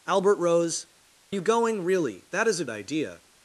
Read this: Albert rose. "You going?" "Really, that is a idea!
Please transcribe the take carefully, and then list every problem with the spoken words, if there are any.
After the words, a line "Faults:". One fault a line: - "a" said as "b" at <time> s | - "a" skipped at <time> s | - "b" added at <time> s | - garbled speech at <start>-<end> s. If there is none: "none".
Albert rose. "You going?" "Really, that is a idea!
Faults:
none